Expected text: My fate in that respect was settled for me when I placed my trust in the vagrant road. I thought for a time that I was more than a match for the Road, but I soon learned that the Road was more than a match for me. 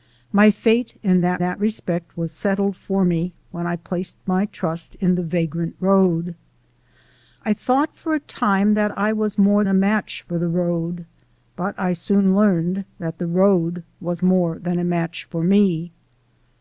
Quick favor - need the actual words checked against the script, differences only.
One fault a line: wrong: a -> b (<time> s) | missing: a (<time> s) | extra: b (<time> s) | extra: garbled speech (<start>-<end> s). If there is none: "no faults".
extra: that (1.4 s)
missing: than (9.6 s)